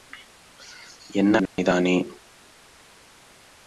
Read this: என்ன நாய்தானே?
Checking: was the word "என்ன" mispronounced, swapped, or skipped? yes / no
no